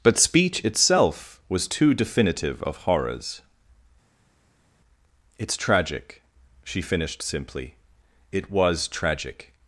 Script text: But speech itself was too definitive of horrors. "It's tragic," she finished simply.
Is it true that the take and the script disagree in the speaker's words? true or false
true